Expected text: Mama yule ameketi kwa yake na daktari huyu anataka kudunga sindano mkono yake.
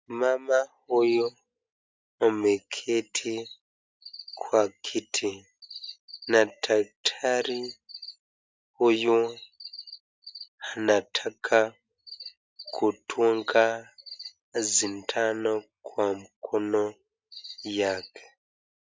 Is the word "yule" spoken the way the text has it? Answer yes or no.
no